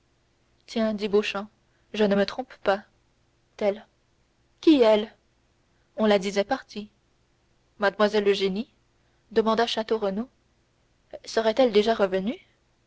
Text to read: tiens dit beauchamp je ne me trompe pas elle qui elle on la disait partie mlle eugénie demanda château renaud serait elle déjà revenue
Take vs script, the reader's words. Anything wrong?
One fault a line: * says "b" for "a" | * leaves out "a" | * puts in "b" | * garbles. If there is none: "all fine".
all fine